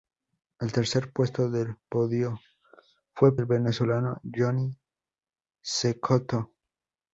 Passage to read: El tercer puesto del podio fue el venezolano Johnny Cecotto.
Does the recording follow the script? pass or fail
pass